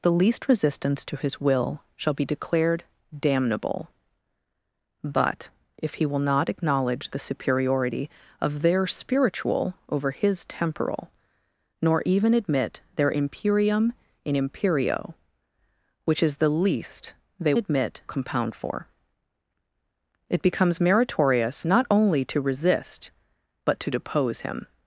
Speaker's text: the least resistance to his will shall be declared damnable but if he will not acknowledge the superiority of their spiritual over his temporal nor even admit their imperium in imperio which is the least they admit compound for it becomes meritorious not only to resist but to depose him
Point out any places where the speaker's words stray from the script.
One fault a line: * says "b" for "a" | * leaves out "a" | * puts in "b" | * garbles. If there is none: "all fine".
all fine